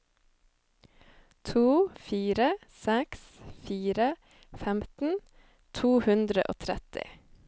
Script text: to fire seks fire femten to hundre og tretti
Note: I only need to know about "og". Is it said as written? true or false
true